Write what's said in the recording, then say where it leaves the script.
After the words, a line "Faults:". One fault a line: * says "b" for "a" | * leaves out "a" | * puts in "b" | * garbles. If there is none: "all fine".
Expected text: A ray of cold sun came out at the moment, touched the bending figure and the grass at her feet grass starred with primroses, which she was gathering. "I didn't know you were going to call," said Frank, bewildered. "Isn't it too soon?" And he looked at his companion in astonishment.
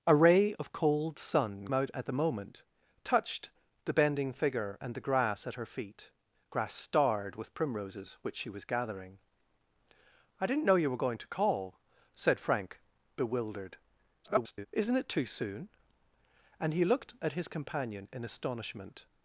A ray of cold sun out at the moment, touched the bending figure and the grass at her feet grass starred with primroses, which she was gathering. "I didn't know you were going to call," said Frank, bewildered. [garbled] "Isn't it too soon?" And he looked at his companion in astonishment.
Faults:
* leaves out "came"
* garbles